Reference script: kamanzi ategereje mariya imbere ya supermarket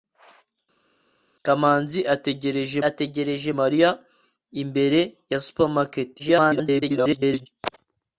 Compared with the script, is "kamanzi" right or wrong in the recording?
right